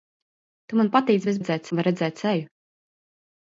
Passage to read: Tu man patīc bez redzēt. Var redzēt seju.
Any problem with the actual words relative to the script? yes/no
no